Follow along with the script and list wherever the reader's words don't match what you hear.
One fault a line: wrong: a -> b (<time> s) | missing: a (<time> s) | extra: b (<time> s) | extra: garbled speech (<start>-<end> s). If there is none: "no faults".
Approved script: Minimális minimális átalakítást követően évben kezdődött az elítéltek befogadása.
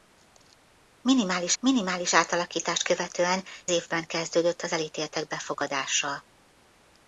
no faults